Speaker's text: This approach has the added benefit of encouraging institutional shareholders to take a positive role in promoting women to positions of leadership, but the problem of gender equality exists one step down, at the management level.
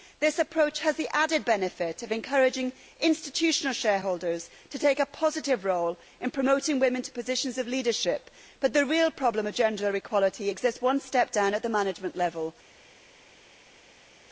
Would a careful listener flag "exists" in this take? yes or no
no